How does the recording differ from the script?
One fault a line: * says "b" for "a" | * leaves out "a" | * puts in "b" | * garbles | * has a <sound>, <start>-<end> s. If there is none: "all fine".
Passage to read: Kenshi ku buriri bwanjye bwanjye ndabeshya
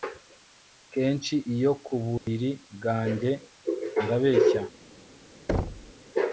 * puts in "iyo"
* has a dropout, 2.2-2.3 s
* leaves out "bwanjye"
* has a thud, 5.5-5.9 s